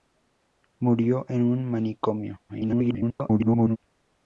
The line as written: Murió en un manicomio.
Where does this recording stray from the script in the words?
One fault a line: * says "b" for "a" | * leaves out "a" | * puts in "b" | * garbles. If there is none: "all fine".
* garbles